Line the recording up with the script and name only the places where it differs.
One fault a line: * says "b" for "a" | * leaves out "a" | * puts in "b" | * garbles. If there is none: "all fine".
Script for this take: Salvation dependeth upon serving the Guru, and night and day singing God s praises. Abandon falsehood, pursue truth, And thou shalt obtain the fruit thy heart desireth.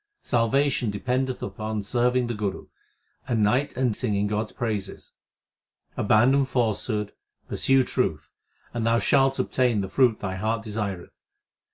* leaves out "day"